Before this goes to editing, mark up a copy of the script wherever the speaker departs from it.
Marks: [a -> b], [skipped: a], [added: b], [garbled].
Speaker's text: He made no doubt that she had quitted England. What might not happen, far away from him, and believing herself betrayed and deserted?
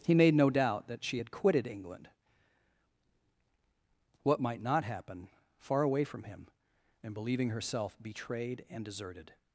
He made no doubt that she had quitted England. What might not happen, far away from him, and believing herself betrayed and deserted?